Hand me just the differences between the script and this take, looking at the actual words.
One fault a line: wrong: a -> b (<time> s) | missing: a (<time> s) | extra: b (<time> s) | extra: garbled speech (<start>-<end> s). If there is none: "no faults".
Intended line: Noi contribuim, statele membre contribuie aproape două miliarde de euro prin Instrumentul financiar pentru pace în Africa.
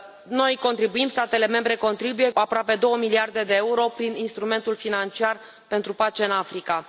no faults